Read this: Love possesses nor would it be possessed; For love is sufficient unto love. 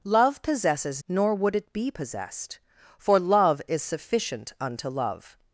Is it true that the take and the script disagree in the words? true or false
false